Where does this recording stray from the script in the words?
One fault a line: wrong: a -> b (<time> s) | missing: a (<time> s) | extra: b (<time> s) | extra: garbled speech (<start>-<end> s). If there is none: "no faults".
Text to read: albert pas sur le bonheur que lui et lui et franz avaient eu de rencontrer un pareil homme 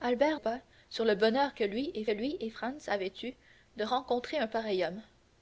no faults